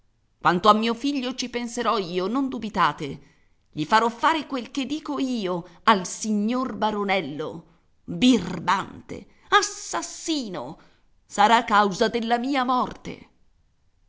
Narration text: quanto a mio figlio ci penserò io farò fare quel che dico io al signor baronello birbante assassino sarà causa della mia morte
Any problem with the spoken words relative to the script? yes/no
yes